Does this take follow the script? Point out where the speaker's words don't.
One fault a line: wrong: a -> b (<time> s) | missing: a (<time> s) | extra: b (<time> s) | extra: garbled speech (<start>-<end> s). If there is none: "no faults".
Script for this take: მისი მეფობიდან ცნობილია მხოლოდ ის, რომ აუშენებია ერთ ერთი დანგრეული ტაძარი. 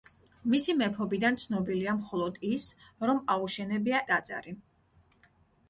missing: ერთ ერთი დანგრეული (4.0 s)